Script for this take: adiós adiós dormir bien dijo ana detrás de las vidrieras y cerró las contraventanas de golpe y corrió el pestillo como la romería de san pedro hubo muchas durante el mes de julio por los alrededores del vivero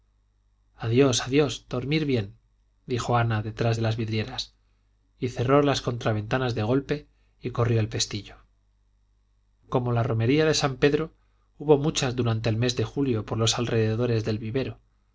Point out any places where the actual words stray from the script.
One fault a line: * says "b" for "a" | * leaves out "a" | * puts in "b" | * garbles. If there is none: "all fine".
all fine